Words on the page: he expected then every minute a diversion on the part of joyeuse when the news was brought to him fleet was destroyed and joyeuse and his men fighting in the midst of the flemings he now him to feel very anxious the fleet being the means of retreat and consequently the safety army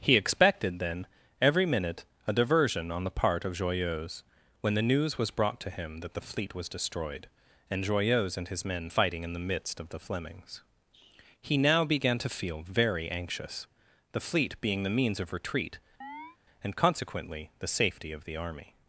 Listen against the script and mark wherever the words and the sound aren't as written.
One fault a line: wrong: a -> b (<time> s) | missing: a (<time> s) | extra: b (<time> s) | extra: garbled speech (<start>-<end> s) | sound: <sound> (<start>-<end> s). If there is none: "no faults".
extra: that the (6.0 s)
wrong: him -> began (11.8 s)
sound: chirp (16.0-16.4 s)
extra: of the (18.1 s)